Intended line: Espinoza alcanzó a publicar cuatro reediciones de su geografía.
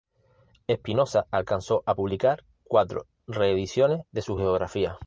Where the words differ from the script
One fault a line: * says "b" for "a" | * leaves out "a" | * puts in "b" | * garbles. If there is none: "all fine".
all fine